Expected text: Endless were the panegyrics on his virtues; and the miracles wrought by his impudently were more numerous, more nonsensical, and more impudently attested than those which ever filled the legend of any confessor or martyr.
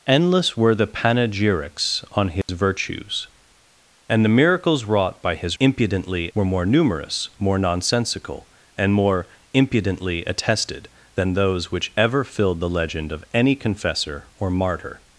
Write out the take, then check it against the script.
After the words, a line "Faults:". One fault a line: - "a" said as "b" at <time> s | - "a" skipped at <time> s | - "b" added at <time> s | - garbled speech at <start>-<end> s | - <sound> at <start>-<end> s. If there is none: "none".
Endless were the panegyrics on his virtues; and the miracles wrought by his impudently were more numerous, more nonsensical, and more impudently attested than those which ever filled the legend of any confessor or martyr.
Faults:
- dropout at 2.4-2.5 s